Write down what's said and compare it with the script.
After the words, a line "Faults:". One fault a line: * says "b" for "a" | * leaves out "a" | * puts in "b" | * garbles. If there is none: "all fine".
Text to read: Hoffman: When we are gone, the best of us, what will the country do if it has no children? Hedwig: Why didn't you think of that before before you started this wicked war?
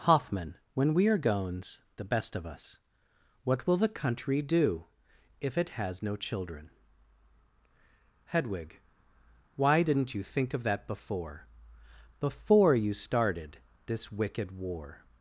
Hoffman: When we are gones, the best of us, what will the country do if it has no children? Hedwig: Why didn't you think of that before before you started this wicked war?
Faults:
* says "gones" for "gone"